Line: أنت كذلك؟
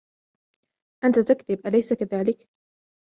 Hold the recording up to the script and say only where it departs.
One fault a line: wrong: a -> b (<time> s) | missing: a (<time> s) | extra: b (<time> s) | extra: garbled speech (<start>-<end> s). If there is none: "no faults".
extra: تكذب أليس (1.2 s)